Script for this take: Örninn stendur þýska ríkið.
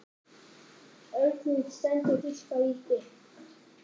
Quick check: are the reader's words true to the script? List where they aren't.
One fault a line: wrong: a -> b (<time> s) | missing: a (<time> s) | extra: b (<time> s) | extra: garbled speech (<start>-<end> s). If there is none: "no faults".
no faults